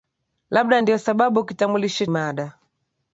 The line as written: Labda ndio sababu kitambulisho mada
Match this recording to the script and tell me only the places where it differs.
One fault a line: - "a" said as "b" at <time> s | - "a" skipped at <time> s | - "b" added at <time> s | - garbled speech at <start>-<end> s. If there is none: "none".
none